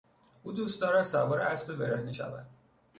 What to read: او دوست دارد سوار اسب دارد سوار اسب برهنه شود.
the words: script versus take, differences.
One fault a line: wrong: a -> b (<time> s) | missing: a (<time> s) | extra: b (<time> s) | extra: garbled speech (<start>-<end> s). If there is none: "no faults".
missing: دارد سوار اسب (1.8 s)